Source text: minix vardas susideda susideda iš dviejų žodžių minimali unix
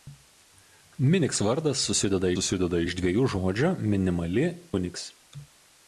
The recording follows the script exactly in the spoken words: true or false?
true